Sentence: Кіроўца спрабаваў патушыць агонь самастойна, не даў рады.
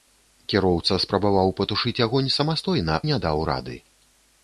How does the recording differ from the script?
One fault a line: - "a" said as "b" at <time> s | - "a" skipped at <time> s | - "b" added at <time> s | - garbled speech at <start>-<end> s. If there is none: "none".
none